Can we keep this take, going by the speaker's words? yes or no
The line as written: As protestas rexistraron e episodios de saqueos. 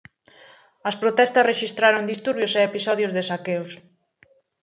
no